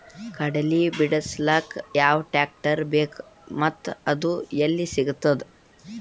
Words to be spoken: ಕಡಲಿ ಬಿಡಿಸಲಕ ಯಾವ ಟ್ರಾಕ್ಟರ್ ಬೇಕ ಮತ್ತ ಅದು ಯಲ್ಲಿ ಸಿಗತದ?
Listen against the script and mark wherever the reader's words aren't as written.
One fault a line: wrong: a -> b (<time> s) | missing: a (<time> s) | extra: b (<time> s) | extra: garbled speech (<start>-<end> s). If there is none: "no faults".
no faults